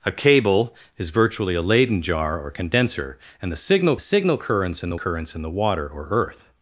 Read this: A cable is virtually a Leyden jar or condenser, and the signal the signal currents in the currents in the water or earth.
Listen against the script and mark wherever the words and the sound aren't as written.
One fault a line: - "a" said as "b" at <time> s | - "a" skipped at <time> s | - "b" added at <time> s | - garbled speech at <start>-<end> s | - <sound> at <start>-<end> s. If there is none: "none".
none